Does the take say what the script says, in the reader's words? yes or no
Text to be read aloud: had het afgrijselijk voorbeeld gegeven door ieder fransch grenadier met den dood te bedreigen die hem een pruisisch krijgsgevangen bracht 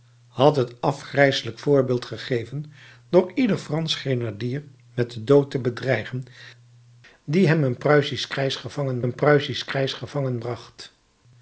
no